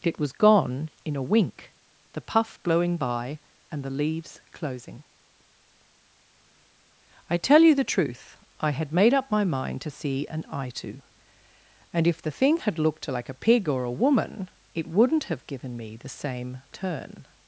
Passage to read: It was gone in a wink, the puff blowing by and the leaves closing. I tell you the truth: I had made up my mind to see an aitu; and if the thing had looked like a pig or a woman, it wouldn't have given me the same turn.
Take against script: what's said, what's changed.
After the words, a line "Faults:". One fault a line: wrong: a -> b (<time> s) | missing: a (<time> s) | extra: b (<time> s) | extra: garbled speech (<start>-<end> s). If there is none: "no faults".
It was gone in a wink, the puff blowing by and the leaves closing. I tell you the truth: I had made up my mind to see an aitu; and if the thing had looked like a pig or a woman, it wouldn't have given me the same turn.
Faults:
no faults